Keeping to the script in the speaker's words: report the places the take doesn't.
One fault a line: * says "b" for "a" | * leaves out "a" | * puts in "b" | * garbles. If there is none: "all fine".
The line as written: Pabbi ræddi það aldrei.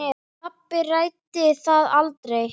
all fine